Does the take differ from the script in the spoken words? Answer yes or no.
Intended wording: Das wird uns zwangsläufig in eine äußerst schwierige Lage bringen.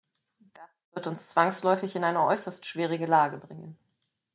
no